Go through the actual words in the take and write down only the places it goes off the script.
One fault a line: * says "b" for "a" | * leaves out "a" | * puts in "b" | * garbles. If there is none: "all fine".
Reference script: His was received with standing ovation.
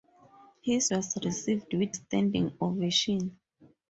all fine